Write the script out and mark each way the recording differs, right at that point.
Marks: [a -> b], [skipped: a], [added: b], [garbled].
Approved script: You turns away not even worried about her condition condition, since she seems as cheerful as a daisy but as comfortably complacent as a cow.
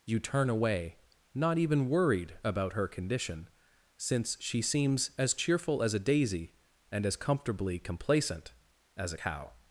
You [turns -> turn] away not even worried about her condition [skipped: condition,] since she seems as cheerful as a daisy [but -> and] as comfortably complacent as a cow.